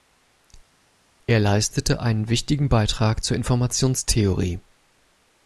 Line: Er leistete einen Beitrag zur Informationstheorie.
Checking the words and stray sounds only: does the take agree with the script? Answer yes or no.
no